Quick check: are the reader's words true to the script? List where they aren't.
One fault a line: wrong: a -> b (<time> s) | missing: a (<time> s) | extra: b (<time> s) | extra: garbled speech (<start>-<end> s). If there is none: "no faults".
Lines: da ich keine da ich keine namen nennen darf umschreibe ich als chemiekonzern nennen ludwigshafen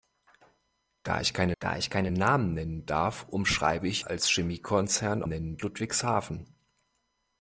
no faults